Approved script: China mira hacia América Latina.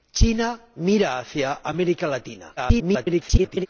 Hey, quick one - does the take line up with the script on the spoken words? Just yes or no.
no